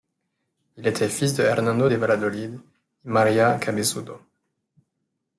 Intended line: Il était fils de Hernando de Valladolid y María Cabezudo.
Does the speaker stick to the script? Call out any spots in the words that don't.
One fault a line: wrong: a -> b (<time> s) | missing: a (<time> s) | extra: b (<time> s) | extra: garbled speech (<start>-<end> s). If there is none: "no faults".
no faults